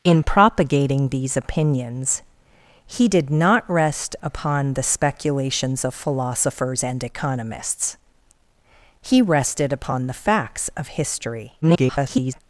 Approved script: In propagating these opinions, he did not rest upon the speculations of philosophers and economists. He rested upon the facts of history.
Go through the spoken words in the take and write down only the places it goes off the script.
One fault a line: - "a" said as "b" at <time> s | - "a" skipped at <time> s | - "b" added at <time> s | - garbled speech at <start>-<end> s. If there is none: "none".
- garbled speech at 11.6-12.4 s